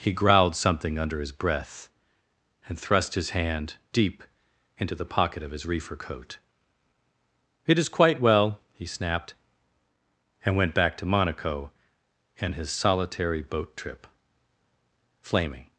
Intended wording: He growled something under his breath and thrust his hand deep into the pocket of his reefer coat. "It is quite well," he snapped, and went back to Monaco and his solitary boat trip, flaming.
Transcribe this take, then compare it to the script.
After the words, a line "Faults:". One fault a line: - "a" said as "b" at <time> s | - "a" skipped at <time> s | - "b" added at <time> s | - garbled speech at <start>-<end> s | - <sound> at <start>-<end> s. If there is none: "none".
He growled something under his breath and thrust his hand deep into the pocket of his reefer coat. "It is quite well," he snapped, and went back to Monaco and his solitary boat trip, flaming.
Faults:
none